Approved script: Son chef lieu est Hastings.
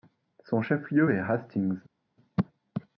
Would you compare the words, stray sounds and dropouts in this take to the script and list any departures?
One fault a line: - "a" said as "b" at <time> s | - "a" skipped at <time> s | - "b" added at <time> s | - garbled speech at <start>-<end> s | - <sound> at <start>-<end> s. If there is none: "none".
none